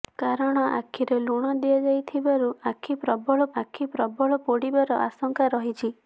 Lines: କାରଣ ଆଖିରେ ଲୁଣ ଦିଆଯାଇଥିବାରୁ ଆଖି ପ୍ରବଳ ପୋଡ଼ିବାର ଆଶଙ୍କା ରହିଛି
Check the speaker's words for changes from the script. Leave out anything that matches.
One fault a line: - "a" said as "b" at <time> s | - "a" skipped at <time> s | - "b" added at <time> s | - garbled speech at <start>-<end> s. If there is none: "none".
- "ଆଖି ପ୍ରବଳ" added at 3.6 s